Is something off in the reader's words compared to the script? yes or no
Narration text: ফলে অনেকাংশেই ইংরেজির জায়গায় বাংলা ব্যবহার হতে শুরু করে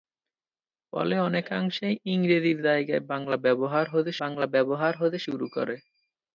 yes